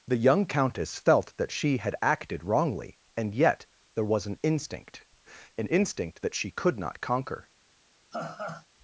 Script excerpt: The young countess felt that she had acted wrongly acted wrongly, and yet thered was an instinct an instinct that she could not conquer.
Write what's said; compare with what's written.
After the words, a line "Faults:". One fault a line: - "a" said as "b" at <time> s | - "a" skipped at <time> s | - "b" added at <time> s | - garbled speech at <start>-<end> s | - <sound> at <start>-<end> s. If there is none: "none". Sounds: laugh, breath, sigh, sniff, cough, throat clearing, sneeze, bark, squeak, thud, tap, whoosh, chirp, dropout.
The young countess felt that she had acted wrongly, and yet there was an instinct an instinct that she could not conquer.
Faults:
- "acted wrongly" skipped at 3.0 s
- "thered" said as "there" at 3.9 s
- laugh at 8.1-8.7 s